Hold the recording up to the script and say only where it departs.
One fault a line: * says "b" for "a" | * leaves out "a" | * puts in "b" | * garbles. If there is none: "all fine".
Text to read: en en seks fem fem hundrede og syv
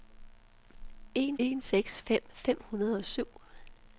all fine